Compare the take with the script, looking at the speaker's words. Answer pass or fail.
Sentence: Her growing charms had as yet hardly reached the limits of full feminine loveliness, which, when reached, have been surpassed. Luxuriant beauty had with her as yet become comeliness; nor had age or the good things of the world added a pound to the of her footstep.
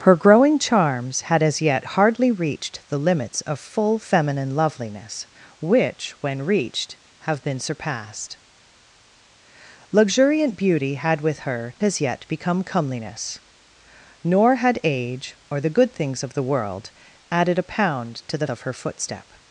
pass